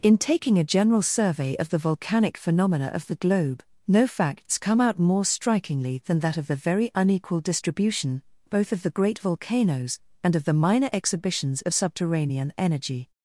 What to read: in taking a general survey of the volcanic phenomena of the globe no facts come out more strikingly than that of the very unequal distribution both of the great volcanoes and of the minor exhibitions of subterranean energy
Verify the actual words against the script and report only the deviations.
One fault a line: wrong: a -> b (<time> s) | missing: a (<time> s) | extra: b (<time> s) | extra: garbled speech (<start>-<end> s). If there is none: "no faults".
no faults